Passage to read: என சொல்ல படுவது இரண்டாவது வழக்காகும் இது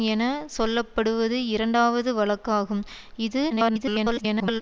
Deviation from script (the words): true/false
true